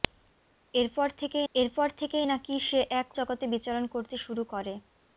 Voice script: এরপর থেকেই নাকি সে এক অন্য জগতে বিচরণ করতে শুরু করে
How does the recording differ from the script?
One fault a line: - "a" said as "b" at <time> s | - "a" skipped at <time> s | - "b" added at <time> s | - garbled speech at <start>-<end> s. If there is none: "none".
- "এরপর থেকেই" added at 1.5 s
- "অন্য" skipped at 3.1 s